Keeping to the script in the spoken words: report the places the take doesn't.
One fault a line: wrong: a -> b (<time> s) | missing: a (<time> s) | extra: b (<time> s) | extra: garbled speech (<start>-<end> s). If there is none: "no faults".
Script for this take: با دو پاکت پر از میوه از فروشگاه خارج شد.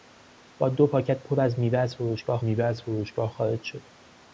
extra: میوه از فروشگاه (2.4 s)